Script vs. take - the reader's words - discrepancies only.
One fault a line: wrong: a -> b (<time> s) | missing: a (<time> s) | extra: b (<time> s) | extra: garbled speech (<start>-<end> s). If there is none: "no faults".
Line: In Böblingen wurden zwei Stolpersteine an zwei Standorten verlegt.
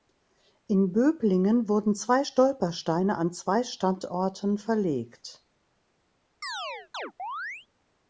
no faults